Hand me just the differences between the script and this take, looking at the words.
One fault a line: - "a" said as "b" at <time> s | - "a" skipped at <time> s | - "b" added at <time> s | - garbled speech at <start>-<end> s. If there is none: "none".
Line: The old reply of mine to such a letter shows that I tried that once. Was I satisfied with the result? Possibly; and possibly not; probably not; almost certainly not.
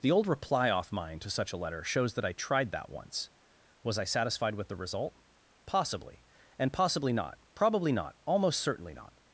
- "of" said as "off" at 0.7 s